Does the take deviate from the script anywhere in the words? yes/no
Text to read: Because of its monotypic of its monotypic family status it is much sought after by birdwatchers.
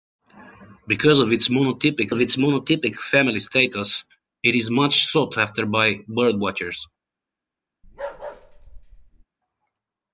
no